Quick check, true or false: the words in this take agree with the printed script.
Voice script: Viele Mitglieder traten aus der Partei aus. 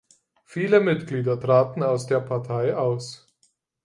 true